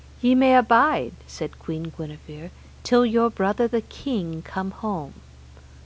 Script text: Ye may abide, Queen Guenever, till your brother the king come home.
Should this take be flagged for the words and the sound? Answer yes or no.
yes